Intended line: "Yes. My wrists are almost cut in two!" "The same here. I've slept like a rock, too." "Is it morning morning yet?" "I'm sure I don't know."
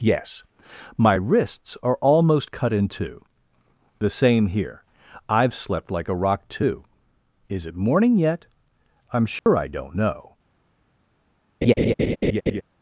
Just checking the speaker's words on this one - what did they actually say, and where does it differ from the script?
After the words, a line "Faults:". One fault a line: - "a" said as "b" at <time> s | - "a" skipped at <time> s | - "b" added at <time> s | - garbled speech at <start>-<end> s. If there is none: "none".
"Yes. My wrists are almost cut in two!" "The same here. I've slept like a rock, too." "Is it morning yet?" "I'm sure I don't know."
Faults:
- "morning" skipped at 8.2 s